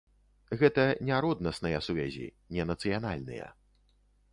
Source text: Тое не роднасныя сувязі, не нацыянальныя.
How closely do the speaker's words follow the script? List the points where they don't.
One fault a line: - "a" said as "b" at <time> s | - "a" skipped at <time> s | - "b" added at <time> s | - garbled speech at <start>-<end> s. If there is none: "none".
- "Тое" said as "Гэта" at 0.6 s